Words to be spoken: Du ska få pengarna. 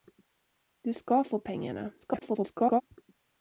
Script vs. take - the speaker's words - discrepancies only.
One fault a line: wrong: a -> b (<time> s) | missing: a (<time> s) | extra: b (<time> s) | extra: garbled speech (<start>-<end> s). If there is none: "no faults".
extra: garbled speech (2.0-2.8 s)